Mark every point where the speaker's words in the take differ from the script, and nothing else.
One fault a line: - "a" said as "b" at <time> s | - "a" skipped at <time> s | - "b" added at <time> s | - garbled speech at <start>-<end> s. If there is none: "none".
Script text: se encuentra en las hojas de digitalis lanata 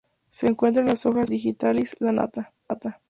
- "de" skipped at 1.3 s